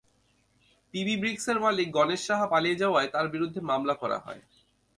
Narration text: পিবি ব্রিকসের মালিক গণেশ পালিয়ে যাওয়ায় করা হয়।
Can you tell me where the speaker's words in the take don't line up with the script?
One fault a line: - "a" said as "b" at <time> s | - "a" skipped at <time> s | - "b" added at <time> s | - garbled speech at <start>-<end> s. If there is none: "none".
- "সাহা" added at 2.3 s
- "তাঁর বিরুদ্ধে মামলা" added at 3.1 s